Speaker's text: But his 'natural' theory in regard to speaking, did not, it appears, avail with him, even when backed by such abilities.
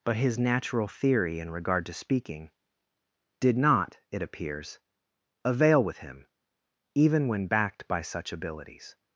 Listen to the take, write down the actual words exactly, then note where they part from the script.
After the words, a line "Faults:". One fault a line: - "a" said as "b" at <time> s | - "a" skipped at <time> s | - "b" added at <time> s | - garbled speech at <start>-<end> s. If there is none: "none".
But his 'natural' theory in regard to speaking, did not, it appears, avail with him, even when backed by such abilities.
Faults:
none